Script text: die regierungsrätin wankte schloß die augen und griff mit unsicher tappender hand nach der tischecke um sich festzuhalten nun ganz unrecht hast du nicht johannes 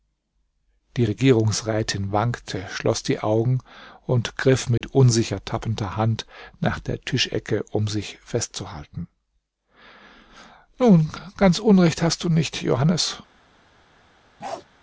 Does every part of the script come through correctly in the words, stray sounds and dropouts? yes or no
no